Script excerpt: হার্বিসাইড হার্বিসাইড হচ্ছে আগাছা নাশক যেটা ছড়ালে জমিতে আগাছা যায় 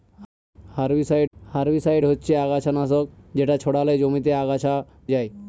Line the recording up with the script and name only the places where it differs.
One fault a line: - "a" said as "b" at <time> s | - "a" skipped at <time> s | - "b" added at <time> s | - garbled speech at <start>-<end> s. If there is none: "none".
none